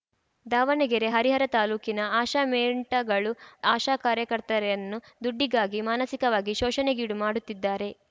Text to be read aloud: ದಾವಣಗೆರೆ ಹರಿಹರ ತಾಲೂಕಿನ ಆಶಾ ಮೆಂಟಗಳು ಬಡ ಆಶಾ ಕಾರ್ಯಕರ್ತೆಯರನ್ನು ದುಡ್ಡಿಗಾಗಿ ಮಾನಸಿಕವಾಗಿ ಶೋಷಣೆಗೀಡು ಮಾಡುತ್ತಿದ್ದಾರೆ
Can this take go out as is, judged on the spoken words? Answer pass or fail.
fail